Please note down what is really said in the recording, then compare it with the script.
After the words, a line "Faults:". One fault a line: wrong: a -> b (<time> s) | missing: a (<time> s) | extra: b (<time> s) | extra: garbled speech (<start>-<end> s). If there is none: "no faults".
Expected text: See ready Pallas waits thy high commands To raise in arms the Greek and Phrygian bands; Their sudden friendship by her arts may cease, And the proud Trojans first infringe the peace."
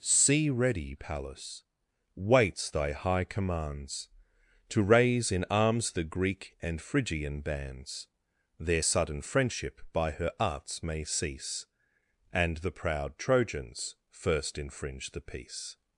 See ready Pallas waits thy high commands To raise in arms the Greek and Phrygian bands; Their sudden friendship by her arts may cease, And the proud Trojans first infringe the peace."
Faults:
no faults